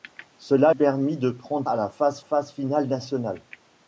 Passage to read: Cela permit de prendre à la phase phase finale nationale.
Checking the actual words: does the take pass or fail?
pass